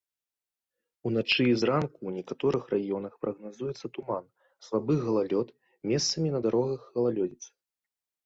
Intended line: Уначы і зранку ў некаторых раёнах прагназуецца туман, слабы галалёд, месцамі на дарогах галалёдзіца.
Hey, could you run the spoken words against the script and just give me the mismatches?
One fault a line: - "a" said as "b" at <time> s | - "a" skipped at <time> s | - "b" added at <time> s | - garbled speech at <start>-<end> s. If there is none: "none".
none